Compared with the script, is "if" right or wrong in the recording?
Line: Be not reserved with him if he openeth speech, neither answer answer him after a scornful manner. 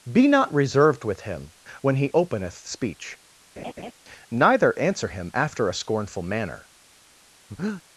wrong